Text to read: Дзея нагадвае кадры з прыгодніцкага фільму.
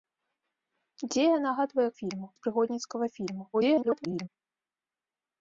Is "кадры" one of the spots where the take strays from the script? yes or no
yes